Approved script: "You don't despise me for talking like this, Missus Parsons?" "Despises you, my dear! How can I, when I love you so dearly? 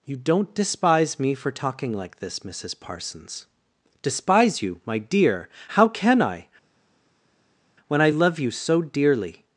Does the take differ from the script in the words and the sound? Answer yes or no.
yes